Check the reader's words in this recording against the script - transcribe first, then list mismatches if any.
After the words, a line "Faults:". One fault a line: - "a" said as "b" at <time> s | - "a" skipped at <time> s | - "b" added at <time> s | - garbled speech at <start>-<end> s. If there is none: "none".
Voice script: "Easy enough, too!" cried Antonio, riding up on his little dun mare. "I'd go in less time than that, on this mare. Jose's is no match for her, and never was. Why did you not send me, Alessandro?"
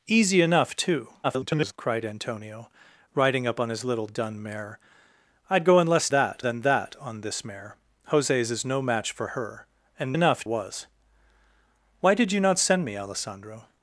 "Easy enough, too!" [garbled] cried Antonio, riding up on his little dun mare. "I'd go in less that than that, on this mare. Jose's is no match for her, and enough was. Why did you not send me, Alessandro?"
Faults:
- garbled speech at 1.2-1.7 s
- "time" said as "that" at 6.1 s
- "never" said as "enough" at 10.1 s